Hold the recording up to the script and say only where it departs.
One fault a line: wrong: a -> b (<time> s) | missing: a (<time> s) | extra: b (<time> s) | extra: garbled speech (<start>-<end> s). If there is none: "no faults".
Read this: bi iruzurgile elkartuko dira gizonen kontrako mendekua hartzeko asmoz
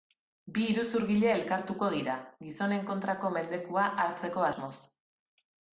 no faults